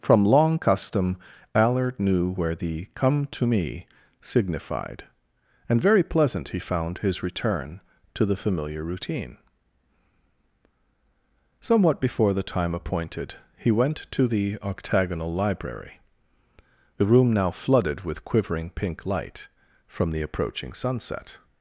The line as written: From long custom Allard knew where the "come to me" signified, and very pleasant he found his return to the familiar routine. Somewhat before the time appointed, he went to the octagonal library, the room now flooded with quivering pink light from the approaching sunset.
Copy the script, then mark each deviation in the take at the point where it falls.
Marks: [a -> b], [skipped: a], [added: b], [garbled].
From long custom Allard knew where the "come to me" signified, and very pleasant he found his return to the familiar routine. Somewhat before the time appointed, he went to the octagonal library, the room now flooded with quivering pink light from the approaching sunset.